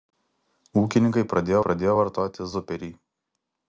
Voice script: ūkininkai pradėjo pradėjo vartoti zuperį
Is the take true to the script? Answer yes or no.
yes